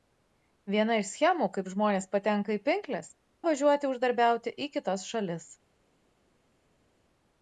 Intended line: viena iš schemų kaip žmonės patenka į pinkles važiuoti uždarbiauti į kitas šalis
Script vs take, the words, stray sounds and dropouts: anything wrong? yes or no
no